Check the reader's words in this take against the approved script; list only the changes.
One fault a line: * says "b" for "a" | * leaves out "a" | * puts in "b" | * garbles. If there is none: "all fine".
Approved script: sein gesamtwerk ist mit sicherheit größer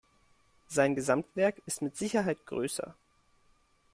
all fine